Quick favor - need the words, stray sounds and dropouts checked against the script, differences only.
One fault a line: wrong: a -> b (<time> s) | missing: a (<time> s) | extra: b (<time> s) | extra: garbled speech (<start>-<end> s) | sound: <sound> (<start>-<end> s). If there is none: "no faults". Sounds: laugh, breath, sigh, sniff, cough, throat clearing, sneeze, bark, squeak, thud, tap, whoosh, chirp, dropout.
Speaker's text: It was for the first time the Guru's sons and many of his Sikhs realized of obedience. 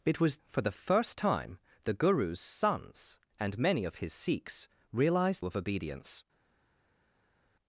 no faults